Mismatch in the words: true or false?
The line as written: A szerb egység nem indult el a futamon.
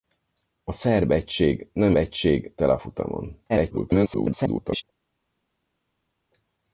true